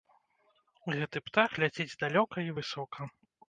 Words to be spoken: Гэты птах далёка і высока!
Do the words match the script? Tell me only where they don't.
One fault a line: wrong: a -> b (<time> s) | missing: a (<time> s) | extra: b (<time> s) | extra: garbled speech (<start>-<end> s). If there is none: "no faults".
extra: ляціць (1.7 s)